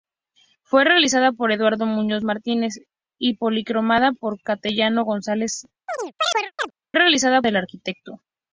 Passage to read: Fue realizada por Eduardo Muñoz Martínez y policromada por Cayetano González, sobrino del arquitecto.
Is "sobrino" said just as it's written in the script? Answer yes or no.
no